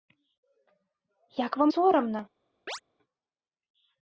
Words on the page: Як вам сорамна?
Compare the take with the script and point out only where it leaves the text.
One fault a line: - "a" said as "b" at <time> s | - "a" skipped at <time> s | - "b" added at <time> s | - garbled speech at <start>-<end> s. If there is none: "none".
none